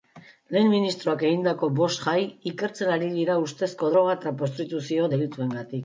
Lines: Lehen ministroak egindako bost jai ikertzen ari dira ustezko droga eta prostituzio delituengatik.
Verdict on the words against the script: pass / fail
pass